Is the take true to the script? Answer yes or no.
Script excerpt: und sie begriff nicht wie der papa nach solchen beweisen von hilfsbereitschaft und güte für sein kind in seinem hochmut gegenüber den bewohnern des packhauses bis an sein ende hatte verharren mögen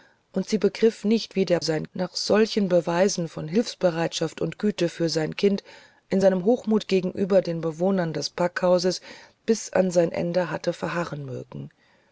no